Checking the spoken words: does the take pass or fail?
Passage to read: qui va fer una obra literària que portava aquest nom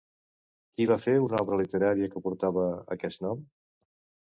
pass